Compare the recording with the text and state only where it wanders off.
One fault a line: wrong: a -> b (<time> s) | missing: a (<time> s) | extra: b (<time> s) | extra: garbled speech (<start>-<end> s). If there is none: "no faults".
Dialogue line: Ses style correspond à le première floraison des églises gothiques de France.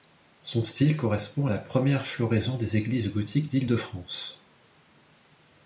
wrong: Ses -> Son (0.4 s)
wrong: le -> la (1.5 s)
extra: d'Île (3.5 s)